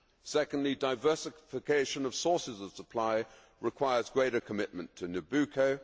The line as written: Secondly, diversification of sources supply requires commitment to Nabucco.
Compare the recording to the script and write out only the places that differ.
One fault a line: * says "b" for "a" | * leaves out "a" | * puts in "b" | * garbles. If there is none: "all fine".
* puts in "of"
* puts in "greater"